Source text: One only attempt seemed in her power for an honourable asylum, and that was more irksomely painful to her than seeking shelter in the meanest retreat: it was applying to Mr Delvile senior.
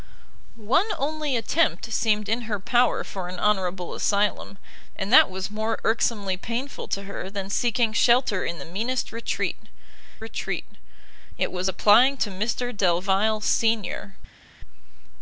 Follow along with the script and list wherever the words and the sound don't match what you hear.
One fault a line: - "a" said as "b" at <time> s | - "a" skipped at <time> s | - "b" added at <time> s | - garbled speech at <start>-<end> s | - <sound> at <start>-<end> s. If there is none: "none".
- "retreat" added at 10.2 s